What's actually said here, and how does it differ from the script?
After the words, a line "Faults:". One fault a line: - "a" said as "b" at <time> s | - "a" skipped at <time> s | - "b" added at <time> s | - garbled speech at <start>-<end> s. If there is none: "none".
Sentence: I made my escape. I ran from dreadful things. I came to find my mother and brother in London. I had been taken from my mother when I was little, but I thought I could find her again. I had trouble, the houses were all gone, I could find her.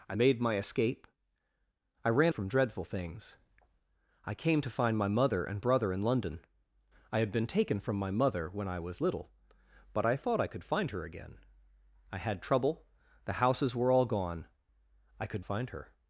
I made my escape. I ran from dreadful things. I came to find my mother and brother in London. I had been taken from my mother when I was little, but I thought I could find her again. I had trouble, the houses were all gone, I could find her.
Faults:
none